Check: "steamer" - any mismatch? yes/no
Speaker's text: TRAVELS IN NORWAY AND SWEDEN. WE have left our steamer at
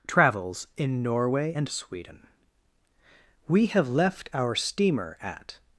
no